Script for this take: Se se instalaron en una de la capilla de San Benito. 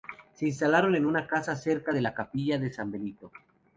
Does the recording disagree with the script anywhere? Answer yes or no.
yes